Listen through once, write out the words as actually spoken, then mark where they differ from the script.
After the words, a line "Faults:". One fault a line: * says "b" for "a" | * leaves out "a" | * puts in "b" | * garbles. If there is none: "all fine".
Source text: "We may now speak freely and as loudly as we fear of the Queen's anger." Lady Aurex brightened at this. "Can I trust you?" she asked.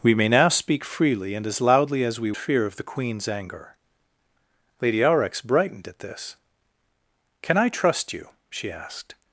"We may now speak freely and as loudly as we fear of the Queen's anger." Lady Aurex brightened at this. "Can I trust you?" she asked.
Faults:
all fine